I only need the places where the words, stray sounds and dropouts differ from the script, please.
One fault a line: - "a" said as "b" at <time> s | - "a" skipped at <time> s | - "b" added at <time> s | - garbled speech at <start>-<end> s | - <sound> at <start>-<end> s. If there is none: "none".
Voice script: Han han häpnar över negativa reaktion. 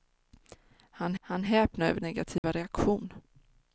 - dropout at 2.4-2.4 s